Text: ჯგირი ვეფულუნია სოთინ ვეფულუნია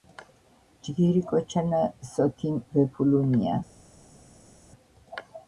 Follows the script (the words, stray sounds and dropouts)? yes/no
no